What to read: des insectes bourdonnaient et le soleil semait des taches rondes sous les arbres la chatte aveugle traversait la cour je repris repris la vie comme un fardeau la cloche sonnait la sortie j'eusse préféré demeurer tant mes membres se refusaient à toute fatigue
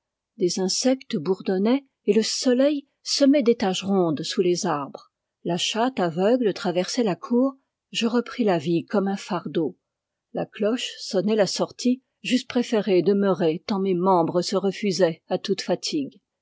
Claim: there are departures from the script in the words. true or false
true